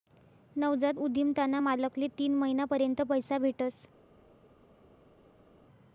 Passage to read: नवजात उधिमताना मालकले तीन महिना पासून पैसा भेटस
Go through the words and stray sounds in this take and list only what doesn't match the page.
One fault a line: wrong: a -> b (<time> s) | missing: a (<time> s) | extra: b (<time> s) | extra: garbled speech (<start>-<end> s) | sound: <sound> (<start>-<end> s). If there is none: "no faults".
wrong: पासून -> पर्यंत (2.7 s)